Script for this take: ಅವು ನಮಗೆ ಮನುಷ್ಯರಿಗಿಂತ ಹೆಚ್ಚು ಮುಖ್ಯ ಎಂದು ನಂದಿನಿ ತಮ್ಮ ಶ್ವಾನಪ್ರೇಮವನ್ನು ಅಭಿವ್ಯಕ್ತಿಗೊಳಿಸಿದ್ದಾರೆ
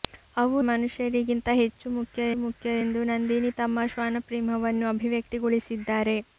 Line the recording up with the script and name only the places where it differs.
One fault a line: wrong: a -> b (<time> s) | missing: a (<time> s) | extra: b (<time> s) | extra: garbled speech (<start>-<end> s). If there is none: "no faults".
missing: ನಮಗೆ (0.6 s)
extra: ಮುಖ್ಯ (2.4 s)